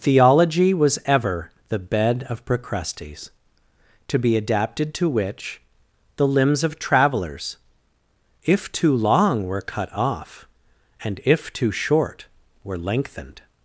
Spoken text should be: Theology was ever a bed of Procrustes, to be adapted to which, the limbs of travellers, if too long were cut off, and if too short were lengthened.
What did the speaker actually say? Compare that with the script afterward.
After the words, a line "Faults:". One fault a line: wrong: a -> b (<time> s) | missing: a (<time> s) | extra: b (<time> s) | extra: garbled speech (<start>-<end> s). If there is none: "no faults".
Theology was ever the bed of Procrustes, to be adapted to which, the limbs of travellers, if too long were cut off, and if too short were lengthened.
Faults:
wrong: a -> the (1.7 s)